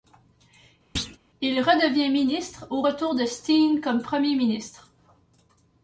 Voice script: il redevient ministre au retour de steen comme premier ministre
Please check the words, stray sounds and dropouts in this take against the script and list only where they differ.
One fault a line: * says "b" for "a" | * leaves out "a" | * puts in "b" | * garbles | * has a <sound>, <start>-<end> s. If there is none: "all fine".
* has a thud, 1.0-1.2 s